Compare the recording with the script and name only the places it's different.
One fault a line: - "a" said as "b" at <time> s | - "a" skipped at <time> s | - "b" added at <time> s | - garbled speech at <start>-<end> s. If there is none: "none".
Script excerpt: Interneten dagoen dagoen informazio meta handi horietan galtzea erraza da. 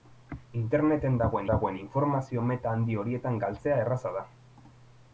none